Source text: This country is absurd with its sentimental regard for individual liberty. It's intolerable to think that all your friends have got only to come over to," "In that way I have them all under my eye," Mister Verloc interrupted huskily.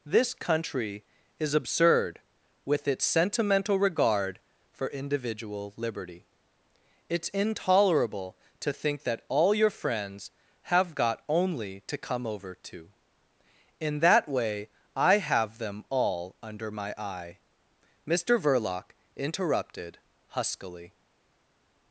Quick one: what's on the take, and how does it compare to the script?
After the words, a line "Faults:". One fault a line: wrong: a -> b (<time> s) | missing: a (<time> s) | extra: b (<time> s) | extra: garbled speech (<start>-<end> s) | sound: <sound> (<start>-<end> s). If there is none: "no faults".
This country is absurd with its sentimental regard for individual liberty. It's intolerable to think that all your friends have got only to come over to," "In that way I have them all under my eye," Mister Verloc interrupted huskily.
Faults:
no faults